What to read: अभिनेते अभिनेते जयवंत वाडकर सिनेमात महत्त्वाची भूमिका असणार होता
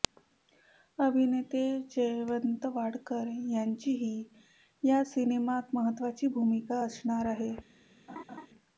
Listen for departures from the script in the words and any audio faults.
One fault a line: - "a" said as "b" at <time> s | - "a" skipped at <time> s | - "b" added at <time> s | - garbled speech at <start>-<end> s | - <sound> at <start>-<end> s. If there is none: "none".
- "अभिनेते" skipped at 1.6 s
- "यांचीही या" added at 3.5 s
- "होता" said as "आहे" at 7.3 s
- laugh at 8.1-8.5 s